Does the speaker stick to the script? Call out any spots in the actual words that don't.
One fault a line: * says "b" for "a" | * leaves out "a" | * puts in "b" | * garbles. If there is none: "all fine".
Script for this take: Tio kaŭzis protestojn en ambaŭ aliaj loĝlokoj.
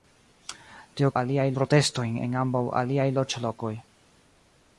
* says "aliaj" for "kaŭzis"